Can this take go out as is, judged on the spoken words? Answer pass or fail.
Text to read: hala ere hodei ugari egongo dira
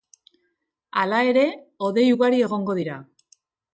pass